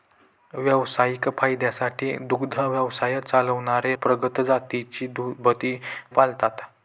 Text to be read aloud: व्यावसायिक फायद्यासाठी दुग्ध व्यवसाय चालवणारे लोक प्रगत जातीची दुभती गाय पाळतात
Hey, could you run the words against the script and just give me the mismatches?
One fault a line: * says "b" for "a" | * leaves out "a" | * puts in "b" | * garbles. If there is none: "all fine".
* leaves out "लोक"
* leaves out "गाय"